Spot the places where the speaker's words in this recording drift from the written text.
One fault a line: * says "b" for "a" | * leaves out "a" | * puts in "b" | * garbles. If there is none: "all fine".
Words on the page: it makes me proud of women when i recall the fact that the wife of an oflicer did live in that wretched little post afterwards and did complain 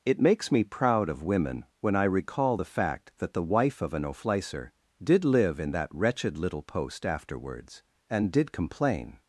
all fine